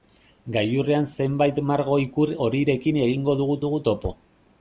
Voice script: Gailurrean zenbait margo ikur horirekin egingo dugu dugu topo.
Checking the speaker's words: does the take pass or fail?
pass